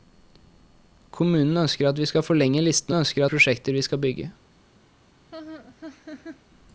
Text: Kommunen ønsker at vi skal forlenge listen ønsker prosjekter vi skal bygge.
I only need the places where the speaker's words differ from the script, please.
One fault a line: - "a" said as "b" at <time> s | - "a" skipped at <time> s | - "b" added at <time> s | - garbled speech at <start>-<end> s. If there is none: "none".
none